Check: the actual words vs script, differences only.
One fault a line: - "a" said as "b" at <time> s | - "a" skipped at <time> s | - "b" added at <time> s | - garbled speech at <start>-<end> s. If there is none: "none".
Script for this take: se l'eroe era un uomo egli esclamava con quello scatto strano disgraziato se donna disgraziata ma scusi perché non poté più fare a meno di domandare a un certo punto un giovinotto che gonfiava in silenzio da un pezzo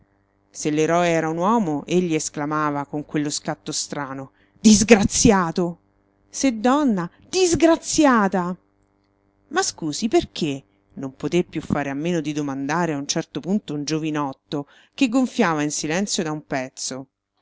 none